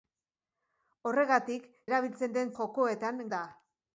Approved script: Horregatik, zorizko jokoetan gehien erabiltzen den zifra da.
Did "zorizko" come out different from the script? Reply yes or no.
yes